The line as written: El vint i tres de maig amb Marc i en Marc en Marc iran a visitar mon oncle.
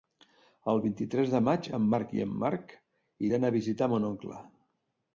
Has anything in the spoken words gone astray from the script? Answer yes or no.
yes